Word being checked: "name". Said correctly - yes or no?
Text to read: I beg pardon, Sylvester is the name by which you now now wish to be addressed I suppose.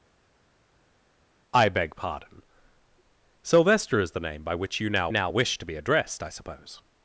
yes